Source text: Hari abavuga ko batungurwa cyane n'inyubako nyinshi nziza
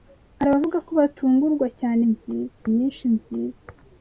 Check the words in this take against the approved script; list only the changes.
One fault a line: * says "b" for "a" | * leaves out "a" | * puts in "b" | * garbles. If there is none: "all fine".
* says "nziza" for "n'inyubako"